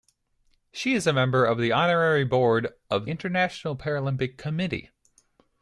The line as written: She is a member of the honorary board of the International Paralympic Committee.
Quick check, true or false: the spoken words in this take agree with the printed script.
false